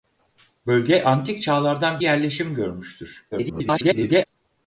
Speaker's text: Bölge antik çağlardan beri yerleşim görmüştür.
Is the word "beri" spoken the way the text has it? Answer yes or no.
no